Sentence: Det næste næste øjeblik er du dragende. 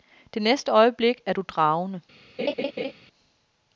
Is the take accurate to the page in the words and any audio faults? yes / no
no